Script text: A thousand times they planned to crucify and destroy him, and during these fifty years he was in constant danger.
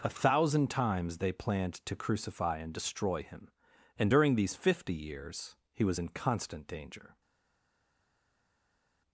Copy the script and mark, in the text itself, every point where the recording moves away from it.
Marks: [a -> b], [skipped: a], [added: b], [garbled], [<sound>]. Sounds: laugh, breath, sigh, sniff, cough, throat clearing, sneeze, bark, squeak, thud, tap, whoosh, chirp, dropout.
A thousand times they planned to crucify and destroy him, and during these fifty years he was in constant danger.